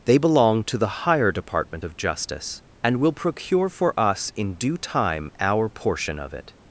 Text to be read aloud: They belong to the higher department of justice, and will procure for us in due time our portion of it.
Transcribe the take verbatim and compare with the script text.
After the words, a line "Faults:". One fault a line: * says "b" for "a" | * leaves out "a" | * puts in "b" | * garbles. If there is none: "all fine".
They belong to the higher department of justice, and will procure for us in due time our portion of it.
Faults:
all fine